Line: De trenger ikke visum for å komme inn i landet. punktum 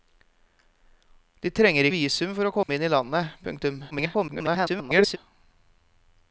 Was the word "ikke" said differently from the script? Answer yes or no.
yes